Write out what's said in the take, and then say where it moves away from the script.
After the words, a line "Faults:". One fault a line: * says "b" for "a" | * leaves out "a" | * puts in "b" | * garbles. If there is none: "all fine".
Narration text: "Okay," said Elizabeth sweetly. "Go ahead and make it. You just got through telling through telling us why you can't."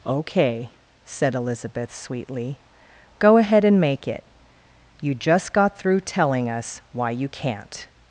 "Okay," said Elizabeth sweetly. "Go ahead and make it. You just got through telling us why you can't."
Faults:
* leaves out "through telling"